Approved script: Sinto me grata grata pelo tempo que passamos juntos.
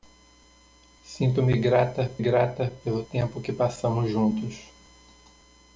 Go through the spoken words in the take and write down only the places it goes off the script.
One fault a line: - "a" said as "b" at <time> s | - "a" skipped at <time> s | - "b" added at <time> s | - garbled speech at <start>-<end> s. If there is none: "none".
none